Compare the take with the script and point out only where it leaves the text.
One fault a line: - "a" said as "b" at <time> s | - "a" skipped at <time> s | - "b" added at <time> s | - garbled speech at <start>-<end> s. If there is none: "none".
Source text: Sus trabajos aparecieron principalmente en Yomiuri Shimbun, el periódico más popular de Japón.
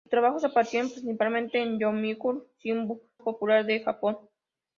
- "el periódico más" skipped at 3.0 s